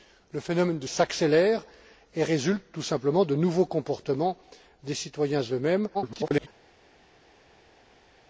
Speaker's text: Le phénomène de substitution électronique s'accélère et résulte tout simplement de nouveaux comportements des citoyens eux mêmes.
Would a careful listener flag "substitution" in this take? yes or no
yes